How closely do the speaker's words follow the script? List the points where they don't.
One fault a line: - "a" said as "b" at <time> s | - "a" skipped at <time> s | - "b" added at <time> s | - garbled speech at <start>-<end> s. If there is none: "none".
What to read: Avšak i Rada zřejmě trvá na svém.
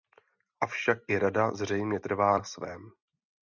none